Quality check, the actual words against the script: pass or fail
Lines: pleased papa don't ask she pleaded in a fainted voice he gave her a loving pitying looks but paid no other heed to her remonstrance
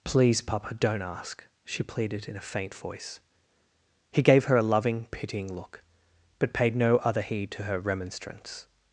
fail